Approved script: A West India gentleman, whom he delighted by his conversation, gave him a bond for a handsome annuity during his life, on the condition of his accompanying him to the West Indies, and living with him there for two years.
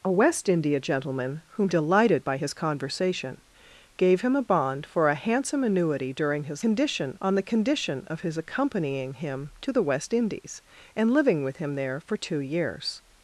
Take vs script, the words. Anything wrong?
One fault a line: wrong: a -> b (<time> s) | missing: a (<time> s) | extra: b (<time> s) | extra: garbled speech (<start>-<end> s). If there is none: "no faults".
missing: he (1.7 s)
wrong: life -> condition (6.6 s)